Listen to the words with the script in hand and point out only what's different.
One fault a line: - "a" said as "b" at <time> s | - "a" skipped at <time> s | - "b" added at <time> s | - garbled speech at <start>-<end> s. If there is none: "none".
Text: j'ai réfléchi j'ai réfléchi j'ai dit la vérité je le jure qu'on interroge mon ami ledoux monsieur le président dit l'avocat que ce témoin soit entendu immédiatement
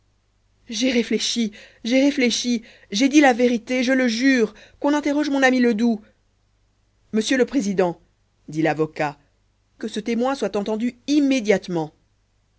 none